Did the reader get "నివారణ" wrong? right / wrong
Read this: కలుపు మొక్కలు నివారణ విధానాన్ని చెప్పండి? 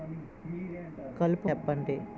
wrong